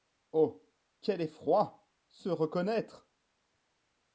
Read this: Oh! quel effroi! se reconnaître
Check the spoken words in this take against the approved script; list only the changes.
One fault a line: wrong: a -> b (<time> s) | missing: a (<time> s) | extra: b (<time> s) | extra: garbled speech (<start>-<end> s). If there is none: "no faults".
no faults